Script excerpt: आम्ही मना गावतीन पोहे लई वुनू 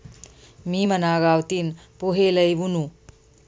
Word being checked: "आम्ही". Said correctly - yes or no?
no